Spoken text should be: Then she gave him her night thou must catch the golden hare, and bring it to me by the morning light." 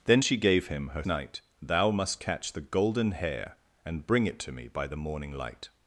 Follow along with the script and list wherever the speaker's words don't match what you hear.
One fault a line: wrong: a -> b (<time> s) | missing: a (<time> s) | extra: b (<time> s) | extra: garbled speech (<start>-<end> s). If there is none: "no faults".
no faults